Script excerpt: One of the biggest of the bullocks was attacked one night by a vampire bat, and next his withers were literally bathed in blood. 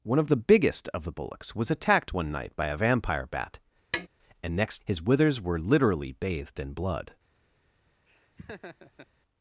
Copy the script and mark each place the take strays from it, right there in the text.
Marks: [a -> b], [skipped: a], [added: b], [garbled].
One of the biggest of the bullocks was attacked one night by a vampire bat, and next his withers were literally bathed in blood.